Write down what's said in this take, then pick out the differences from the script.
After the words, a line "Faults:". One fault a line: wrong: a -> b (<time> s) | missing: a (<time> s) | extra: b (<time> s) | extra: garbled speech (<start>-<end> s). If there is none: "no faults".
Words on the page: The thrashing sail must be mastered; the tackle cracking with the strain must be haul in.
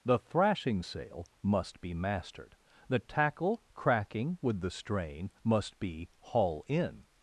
The thrashing sail must be mastered; the tackle cracking with the strain must be haul in.
Faults:
no faults